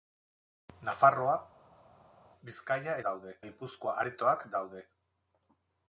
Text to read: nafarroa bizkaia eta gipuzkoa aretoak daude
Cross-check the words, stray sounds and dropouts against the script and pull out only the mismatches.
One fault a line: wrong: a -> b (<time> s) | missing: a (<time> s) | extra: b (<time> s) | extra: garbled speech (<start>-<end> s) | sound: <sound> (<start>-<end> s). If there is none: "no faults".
wrong: eta -> daude (3.1 s)